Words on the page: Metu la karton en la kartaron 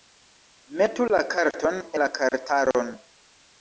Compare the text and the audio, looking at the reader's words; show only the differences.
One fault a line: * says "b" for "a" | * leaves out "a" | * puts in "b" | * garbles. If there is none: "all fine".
* leaves out "en"